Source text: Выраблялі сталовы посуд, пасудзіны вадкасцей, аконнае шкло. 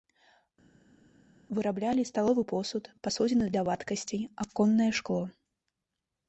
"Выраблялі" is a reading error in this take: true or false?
false